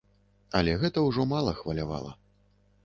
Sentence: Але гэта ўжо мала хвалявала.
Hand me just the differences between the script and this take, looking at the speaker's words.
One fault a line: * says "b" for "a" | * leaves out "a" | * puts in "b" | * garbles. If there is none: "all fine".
all fine